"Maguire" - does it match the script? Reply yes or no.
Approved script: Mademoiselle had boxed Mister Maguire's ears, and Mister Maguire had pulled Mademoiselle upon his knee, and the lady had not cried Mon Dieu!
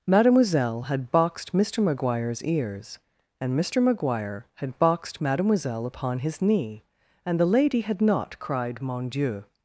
yes